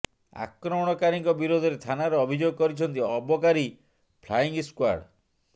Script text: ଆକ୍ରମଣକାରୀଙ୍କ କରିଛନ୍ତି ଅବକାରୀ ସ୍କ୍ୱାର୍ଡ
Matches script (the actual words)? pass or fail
fail